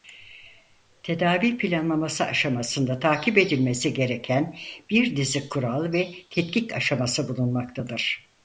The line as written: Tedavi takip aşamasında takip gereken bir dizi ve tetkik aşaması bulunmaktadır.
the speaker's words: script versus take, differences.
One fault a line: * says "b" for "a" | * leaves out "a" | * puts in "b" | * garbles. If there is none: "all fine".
* says "planlaması" for "takip"
* puts in "edilmesi"
* puts in "kural"